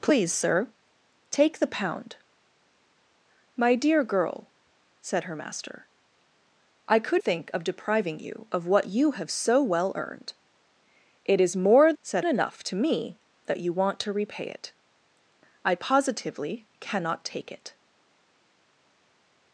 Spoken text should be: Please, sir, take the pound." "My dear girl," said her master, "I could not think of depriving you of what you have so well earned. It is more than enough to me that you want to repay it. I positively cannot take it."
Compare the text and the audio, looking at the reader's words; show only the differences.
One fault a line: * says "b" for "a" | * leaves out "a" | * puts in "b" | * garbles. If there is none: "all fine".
* leaves out "not"
* says "said" for "than"